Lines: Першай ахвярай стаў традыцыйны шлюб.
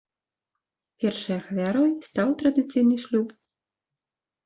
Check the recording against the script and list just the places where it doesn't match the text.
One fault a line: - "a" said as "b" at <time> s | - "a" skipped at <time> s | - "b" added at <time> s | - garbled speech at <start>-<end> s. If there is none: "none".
none